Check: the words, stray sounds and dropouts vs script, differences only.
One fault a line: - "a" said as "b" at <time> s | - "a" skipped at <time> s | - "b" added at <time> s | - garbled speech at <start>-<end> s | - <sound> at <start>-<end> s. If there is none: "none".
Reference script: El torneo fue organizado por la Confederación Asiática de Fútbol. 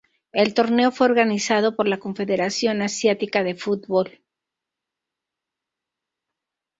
none